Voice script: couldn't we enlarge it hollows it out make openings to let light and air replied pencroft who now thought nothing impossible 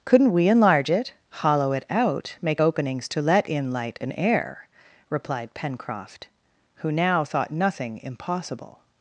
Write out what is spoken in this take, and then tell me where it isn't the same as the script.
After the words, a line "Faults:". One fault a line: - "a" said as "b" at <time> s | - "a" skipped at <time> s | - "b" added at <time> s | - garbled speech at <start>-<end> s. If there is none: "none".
couldn't we enlarge it hollow it out make openings to let in light and air replied pencroft who now thought nothing impossible
Faults:
- "hollows" said as "hollow" at 1.3 s
- "in" added at 3.5 s